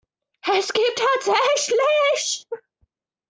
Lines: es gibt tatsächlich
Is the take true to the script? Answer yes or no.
yes